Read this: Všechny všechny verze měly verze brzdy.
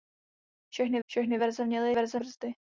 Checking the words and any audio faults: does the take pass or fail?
pass